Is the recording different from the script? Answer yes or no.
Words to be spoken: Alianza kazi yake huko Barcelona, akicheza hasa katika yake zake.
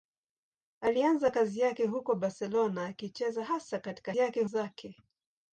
no